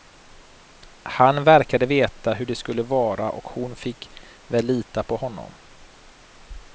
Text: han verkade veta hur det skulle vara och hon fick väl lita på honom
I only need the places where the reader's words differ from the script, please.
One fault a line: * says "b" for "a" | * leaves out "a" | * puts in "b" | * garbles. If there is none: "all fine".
all fine